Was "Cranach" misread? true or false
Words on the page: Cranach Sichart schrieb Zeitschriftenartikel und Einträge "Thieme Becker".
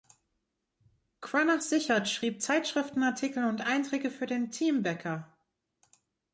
false